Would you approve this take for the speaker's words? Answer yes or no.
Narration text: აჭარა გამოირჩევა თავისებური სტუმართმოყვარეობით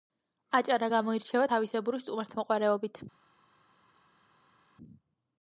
yes